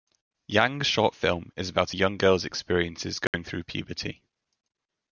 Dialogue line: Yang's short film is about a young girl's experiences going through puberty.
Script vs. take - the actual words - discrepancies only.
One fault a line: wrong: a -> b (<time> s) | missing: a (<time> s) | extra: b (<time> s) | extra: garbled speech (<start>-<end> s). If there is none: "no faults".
no faults